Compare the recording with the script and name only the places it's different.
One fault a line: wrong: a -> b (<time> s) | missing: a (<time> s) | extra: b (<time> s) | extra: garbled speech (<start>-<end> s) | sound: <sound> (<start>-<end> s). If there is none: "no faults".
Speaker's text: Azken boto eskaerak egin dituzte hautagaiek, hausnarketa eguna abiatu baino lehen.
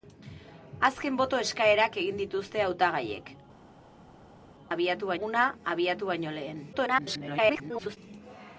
wrong: hausnarketa -> abiatu (4.8 s)
extra: garbled speech (6.7-8.0 s)